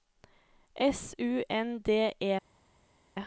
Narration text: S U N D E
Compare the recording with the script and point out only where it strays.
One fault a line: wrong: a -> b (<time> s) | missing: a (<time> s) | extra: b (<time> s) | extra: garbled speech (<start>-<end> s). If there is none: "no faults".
no faults